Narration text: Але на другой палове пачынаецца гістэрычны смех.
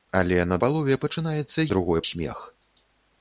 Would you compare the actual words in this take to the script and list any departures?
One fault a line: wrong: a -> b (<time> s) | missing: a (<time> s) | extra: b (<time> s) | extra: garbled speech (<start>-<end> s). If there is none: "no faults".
missing: другой (0.6 s)
wrong: гістэрычны -> другой (1.7 s)